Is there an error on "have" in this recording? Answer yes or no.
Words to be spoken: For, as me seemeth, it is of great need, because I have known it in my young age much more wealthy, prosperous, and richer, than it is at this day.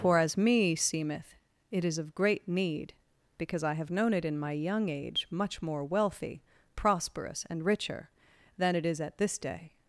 no